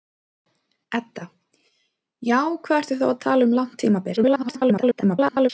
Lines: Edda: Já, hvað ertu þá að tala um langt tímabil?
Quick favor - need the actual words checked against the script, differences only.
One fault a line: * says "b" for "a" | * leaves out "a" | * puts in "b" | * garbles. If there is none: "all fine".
* garbles